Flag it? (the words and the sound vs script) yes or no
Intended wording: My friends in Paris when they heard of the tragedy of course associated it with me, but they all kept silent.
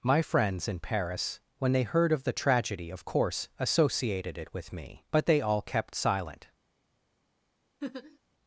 yes